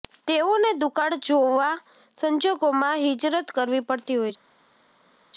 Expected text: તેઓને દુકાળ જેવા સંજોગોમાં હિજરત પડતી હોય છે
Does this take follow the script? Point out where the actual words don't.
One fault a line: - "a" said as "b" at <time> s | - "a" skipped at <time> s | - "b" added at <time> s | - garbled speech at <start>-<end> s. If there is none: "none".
- "કરવી" added at 3.6 s